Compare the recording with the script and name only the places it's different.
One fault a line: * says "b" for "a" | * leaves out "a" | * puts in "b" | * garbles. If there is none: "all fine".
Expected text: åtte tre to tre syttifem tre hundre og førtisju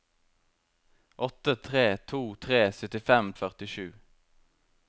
* leaves out "tre hundre"